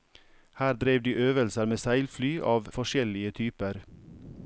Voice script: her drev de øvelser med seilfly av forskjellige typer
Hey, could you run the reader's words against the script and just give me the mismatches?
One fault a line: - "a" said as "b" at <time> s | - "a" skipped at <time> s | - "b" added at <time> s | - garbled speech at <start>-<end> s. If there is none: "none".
none